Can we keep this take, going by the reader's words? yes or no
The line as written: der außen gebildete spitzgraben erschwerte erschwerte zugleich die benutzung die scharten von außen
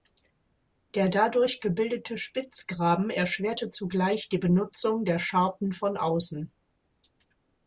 no